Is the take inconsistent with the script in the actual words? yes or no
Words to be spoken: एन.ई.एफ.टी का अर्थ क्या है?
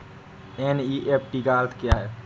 no